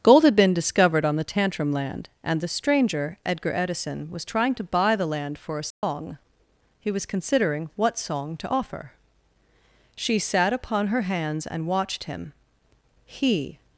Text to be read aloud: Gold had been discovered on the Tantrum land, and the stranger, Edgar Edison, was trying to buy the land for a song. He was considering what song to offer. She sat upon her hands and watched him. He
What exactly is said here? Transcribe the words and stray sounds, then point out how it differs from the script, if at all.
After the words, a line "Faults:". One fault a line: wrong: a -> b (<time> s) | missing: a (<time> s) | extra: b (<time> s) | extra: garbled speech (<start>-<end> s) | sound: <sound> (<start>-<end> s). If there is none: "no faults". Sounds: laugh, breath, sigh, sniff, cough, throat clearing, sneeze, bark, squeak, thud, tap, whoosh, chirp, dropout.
Gold had been discovered on the Tantrum land, and the stranger, Edgar Edison, was trying to buy the land for a song. He was considering what song to offer. She sat upon her hands and watched him. He
Faults:
sound: dropout (5.7-5.8 s)